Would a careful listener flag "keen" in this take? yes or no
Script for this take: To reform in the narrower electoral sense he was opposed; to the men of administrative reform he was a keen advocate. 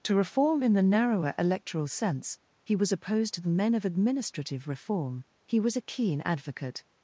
no